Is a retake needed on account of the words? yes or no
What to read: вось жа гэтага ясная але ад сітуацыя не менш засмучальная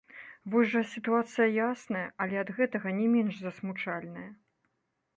yes